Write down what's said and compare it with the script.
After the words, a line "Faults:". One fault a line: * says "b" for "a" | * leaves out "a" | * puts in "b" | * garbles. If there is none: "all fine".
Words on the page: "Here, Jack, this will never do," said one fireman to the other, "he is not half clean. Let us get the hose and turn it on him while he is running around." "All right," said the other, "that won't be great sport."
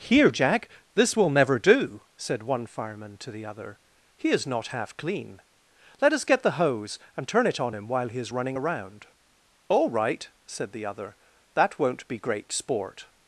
"Here, Jack, this will never do," said one fireman to the other, "he is not half clean. Let us get the hose and turn it on him while he is running around." "All right," said the other, "that won't be great sport."
Faults:
all fine